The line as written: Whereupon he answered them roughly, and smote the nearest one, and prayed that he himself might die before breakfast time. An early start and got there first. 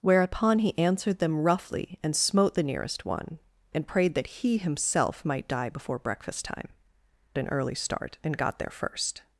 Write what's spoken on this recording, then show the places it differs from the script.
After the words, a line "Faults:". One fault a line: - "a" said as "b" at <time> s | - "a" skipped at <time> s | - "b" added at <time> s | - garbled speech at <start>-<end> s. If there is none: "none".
Whereupon he answered them roughly, and smote the nearest one, and prayed that he himself might die before breakfast time. An early start and got there first.
Faults:
none